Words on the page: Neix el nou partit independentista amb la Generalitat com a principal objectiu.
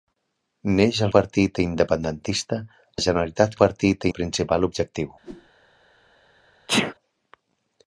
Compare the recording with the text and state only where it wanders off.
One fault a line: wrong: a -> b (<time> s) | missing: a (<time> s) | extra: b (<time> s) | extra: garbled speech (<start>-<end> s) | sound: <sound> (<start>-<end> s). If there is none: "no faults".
missing: nou (1.1 s)
missing: amb (2.6 s)
wrong: com -> partit (3.6 s)
sound: whoosh (5.2-5.5 s)
sound: sneeze (6.7-6.9 s)